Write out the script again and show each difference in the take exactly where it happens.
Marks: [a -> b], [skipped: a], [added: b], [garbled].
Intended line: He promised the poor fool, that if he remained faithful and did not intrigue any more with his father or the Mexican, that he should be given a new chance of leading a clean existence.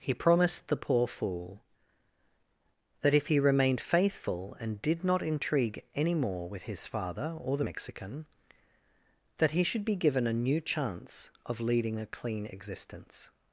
He promised the poor fool, that if he remained faithful and did not intrigue any more with his father or the Mexican, that he should be given a new chance of leading a clean existence.